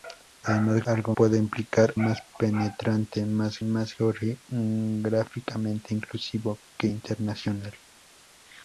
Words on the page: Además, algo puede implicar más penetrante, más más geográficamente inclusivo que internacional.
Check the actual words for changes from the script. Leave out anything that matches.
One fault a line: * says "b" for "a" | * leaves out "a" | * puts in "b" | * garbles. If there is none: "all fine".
all fine